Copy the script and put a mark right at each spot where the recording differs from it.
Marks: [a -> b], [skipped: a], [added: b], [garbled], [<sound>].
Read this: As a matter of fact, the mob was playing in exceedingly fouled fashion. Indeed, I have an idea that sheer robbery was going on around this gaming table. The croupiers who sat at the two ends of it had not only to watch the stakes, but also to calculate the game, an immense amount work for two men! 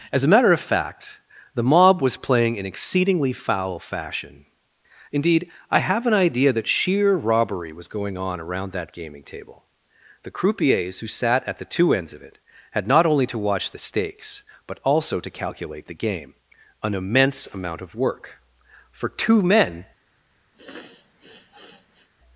As a matter of fact, the mob was playing in exceedingly [fouled -> foul] fashion. Indeed, I have an idea that sheer robbery was going on around [this -> that] gaming table. The croupiers who sat at the two ends of it had not only to watch the stakes, but also to calculate the game, an immense amount [added: of] work for two men! [sniff]